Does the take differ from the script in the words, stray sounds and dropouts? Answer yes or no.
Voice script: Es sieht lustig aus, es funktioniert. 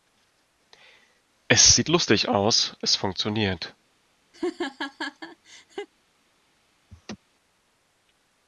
yes